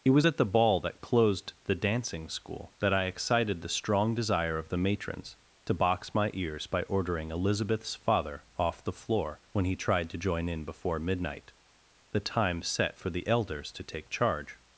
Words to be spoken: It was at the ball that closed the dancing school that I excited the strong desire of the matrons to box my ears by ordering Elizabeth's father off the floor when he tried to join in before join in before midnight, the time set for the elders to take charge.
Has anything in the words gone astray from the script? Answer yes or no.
yes